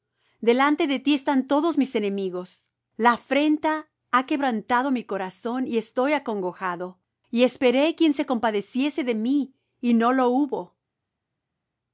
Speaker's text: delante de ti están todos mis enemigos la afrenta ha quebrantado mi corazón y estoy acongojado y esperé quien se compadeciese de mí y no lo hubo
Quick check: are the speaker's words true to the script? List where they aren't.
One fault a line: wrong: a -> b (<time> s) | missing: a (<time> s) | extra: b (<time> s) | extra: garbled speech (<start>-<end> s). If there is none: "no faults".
no faults